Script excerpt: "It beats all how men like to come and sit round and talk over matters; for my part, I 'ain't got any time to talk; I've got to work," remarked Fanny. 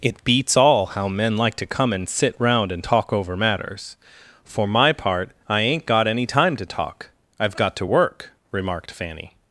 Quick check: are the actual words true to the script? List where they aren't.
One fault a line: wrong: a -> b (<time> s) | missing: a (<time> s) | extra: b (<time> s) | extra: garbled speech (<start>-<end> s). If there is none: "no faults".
no faults